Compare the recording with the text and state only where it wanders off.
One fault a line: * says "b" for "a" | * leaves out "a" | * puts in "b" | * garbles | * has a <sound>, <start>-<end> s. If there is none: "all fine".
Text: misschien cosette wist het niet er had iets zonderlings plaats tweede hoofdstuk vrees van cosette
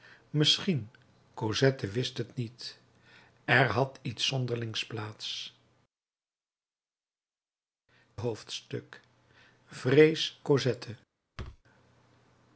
* leaves out "tweede"
* leaves out "van"
* has a thud, 11.4-11.6 s